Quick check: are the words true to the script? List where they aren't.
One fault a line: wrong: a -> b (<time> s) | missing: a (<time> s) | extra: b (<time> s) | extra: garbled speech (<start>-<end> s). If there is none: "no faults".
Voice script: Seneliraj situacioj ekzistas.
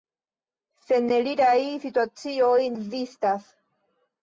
no faults